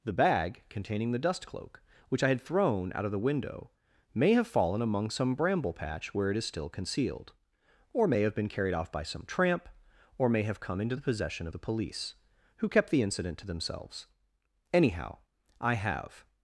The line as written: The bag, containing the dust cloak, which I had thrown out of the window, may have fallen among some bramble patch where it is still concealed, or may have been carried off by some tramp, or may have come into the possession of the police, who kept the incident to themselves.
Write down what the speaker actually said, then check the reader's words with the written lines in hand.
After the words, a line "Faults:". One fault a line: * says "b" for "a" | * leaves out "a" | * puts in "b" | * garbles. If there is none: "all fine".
The bag, containing the dust cloak, which I had thrown out of the window, may have fallen among some bramble patch where it is still concealed, or may have been carried off by some tramp, or may have come into the possession of the police, who kept the incident to themselves. Anyhow, I have
Faults:
* puts in "Anyhow I have"